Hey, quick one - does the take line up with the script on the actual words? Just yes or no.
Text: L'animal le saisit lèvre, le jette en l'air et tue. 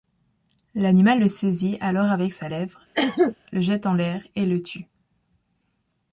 no